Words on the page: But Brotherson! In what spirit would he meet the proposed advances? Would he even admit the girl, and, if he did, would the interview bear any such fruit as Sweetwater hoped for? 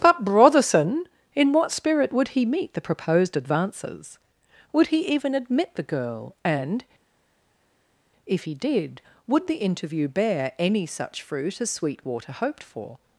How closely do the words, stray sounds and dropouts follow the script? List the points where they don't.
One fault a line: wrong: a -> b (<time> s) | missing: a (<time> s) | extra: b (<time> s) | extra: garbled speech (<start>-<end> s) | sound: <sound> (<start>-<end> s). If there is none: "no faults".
no faults